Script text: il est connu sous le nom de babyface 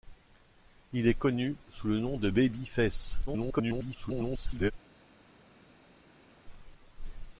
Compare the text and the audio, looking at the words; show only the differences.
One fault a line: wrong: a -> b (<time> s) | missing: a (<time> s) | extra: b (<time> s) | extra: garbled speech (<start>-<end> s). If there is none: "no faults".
extra: garbled speech (3.3-4.7 s)